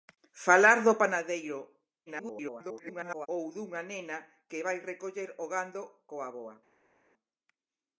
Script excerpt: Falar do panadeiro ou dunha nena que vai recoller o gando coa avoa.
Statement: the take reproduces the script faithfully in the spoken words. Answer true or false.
false